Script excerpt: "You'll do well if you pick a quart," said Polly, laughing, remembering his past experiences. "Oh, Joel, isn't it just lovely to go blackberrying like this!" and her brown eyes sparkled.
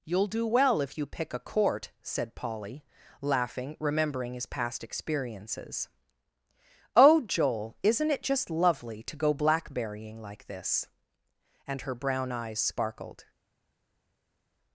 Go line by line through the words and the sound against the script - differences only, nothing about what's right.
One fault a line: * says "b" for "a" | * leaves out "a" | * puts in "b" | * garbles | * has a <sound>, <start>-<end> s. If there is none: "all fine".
* says "court" for "quart"